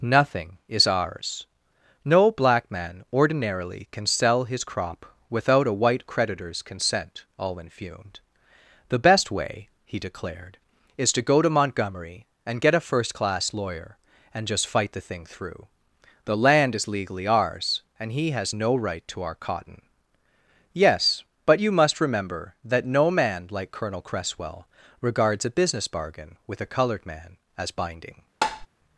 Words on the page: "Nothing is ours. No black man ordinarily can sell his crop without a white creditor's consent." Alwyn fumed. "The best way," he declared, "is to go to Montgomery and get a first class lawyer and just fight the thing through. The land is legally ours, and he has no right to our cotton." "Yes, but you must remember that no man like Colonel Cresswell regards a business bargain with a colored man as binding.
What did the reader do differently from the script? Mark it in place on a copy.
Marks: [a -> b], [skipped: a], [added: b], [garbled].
"Nothing is ours. No black man ordinarily can sell his crop without a white creditor's consent." Alwyn fumed. "The best way," he declared, "is to go to Montgomery and get a first class lawyer and just fight the thing through. The land is legally ours, and he has no right to our cotton." "Yes, but you must remember that no man like Colonel Cresswell regards a business bargain with a colored man as binding.